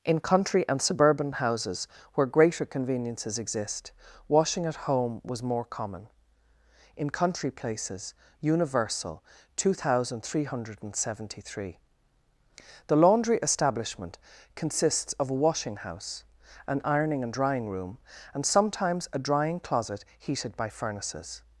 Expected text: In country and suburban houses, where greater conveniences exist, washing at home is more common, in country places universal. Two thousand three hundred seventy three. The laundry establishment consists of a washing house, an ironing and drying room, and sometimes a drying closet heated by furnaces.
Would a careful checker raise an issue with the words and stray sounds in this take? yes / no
yes